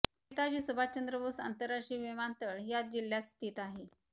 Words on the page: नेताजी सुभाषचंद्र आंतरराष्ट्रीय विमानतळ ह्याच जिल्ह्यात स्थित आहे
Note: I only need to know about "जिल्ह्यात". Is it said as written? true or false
true